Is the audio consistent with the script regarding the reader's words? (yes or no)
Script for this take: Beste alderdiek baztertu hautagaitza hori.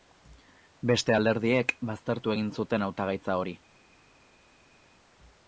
no